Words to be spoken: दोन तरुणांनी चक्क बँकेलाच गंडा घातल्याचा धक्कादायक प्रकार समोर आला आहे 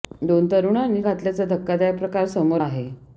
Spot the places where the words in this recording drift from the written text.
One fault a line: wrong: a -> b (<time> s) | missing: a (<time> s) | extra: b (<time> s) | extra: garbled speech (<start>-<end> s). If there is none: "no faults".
missing: चक्क बँकेलाच गंडा (1.0 s)
missing: आला (2.6 s)